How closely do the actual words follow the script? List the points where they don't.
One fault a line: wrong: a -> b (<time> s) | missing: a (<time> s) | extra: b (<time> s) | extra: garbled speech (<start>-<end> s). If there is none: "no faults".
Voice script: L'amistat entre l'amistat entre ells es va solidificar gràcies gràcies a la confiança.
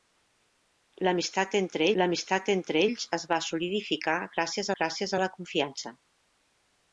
no faults